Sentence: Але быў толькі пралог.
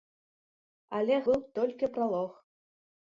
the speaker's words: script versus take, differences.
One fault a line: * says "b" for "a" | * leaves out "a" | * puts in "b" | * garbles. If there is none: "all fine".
all fine